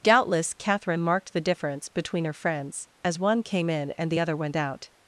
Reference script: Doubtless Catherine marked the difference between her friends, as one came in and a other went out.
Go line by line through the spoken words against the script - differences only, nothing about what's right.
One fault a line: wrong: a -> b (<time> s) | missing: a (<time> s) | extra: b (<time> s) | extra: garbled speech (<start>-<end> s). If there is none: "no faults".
wrong: a -> the (4.1 s)